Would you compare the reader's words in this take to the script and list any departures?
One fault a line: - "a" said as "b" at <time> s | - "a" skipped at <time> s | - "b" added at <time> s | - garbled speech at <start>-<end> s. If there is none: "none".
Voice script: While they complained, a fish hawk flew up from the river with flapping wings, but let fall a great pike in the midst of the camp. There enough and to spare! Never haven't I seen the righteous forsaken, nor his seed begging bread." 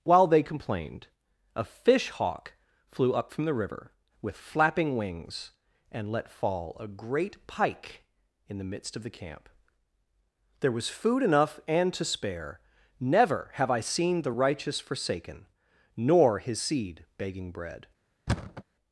- "but" said as "and" at 5.9 s
- "was food" added at 10.7 s
- "haven't" said as "have" at 13.6 s